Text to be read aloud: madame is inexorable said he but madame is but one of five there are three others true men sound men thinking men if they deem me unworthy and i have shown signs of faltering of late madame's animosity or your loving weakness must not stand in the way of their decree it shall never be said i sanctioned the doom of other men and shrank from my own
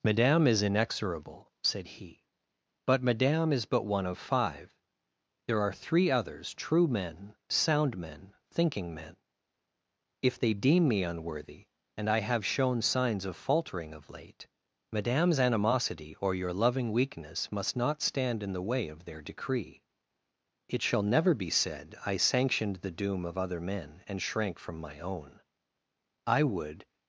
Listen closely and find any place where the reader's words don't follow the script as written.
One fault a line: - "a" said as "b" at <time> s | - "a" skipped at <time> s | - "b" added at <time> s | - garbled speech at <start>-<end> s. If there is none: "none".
- "i would" added at 26.3 s